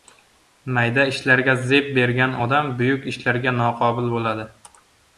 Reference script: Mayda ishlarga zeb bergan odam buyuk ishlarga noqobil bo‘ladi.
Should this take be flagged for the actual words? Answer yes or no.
no